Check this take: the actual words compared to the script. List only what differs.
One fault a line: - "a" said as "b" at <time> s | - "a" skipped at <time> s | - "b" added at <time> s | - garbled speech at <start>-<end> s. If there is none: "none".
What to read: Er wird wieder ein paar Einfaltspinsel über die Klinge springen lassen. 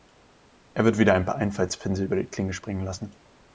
none